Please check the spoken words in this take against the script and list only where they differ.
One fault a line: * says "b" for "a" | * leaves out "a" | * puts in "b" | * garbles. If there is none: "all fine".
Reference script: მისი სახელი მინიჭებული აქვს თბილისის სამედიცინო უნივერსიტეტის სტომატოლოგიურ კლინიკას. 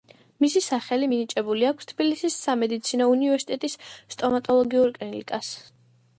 all fine